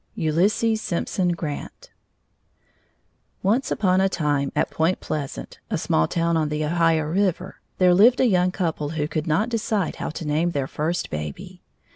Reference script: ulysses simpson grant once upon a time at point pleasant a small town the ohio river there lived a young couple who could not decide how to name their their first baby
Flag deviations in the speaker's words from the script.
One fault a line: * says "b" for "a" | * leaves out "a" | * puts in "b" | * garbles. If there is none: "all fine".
* puts in "on"
* leaves out "their"